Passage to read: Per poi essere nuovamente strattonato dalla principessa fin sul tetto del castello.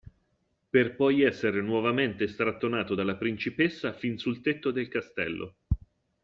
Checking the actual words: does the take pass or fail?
pass